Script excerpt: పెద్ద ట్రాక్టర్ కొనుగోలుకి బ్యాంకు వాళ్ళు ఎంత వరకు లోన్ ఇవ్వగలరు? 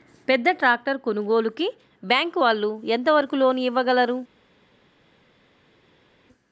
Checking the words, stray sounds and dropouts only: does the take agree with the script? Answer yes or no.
yes